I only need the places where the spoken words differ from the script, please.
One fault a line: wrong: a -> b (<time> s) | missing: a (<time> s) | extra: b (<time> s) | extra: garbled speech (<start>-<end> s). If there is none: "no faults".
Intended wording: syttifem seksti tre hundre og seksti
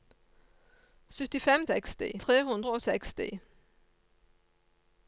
no faults